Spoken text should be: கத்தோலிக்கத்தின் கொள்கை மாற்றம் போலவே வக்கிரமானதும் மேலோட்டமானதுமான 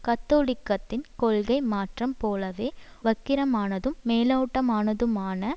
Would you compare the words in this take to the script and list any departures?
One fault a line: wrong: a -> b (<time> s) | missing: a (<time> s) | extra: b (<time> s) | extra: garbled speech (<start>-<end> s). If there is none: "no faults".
no faults